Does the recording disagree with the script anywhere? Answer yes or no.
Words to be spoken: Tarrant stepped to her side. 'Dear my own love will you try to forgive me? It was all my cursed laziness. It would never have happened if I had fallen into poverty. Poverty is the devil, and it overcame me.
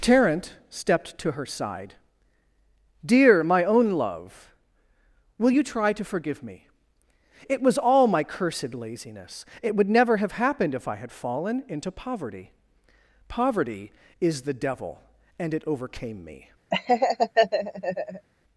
no